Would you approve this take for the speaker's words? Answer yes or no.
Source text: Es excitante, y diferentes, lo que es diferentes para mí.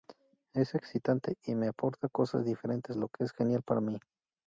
no